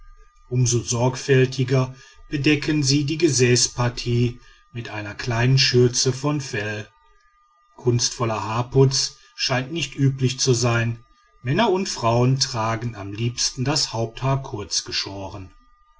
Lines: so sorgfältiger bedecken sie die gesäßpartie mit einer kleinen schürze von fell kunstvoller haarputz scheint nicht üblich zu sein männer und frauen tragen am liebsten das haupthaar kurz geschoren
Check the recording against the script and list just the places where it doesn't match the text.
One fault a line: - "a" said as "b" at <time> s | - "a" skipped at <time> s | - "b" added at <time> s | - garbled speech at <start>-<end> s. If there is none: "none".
none